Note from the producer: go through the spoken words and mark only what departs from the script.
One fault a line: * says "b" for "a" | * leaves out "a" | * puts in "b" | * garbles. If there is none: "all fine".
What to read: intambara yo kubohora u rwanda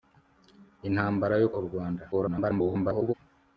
* leaves out "kubohora"
* garbles